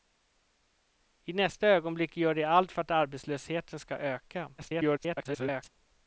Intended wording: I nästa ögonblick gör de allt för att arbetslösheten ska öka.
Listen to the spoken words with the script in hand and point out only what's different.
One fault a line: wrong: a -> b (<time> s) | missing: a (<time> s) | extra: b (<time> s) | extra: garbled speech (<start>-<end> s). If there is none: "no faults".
extra: garbled speech (4.6-5.7 s)